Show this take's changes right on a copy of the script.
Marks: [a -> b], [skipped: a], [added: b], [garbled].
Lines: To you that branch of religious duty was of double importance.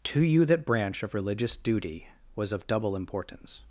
To you that branch of religious duty was of double importance.